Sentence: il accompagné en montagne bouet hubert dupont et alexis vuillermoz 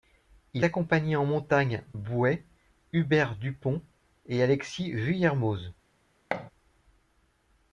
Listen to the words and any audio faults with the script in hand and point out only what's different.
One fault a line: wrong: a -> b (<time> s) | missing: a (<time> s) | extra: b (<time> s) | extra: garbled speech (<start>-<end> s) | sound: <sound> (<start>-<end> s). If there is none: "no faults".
sound: thud (6.3-6.5 s)